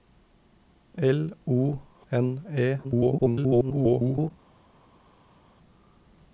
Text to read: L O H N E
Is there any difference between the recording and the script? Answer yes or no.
yes